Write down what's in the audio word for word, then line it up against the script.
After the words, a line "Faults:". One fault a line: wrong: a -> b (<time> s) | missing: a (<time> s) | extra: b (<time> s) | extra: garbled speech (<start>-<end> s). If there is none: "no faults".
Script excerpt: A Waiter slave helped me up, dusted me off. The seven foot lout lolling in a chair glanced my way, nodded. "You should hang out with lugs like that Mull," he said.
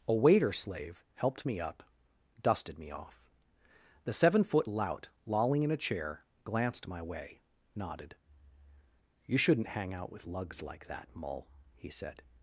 A Waiter slave helped me up, dusted me off. The seven foot lout lolling in a chair glanced my way, nodded. "You shouldn't hang out with lugs like that Mull," he said.
Faults:
wrong: should -> shouldn't (9.4 s)